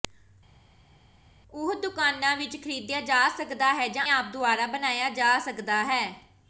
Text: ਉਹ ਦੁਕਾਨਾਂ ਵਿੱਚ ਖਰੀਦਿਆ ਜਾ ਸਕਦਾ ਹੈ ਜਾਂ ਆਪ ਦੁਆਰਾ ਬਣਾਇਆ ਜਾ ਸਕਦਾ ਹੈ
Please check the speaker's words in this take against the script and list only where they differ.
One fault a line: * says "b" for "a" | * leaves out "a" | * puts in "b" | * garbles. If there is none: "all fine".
all fine